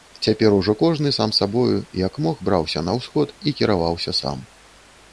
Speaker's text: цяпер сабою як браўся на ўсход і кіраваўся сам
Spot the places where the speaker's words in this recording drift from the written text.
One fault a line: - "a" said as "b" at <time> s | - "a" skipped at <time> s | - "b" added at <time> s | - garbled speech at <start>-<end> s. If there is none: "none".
- "ужо кожны сам" added at 0.6 s
- "мог" added at 2.3 s